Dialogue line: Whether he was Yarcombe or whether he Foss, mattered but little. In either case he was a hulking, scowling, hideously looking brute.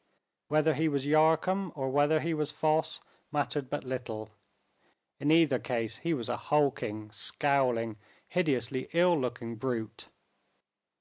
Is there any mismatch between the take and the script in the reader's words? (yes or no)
yes